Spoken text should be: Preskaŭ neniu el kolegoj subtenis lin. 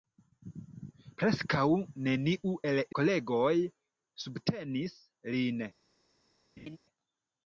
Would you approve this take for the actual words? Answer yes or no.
yes